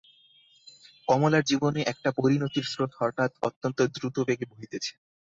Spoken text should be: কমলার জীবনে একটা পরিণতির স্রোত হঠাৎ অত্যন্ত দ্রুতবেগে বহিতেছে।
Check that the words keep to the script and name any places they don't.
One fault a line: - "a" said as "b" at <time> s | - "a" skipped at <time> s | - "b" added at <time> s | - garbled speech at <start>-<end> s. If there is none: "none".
none